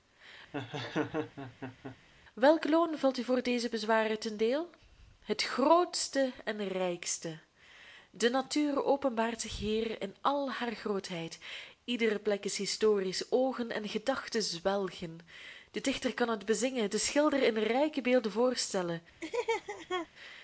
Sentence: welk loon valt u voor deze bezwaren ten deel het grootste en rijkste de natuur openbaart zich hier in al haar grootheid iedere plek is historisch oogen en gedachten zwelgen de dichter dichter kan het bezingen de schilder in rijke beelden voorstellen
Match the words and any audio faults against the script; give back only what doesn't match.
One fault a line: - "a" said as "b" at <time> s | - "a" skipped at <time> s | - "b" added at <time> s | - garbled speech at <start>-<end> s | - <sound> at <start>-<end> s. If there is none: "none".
- laugh at 0.5-2.0 s
- "dichter" skipped at 16.1 s
- laugh at 19.2-20.1 s